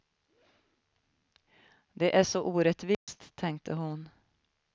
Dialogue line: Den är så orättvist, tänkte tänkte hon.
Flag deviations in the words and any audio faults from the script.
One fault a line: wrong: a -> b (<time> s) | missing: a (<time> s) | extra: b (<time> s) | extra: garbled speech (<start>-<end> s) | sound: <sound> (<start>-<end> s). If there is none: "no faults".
wrong: Den -> Det (1.9 s)
sound: dropout (2.9-3.1 s)
missing: tänkte (3.7 s)